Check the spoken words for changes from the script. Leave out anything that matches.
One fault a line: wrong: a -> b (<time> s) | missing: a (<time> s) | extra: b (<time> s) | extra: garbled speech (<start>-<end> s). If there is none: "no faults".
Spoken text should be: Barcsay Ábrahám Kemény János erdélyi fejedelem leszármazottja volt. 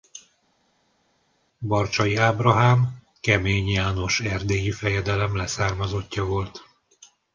no faults